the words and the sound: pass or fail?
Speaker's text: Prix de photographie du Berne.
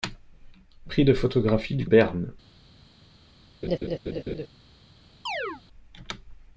fail